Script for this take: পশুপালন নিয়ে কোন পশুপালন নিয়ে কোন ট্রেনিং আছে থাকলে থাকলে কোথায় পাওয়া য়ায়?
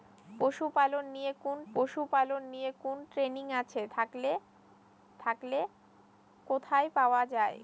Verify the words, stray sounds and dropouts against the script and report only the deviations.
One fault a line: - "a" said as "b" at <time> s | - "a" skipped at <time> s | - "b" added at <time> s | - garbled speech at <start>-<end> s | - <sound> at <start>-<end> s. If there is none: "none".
none